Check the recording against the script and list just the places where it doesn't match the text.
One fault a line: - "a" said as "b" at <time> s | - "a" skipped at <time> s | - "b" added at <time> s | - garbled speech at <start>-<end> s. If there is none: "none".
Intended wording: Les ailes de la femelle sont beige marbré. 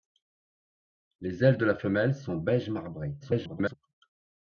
- garbled speech at 3.2-3.7 s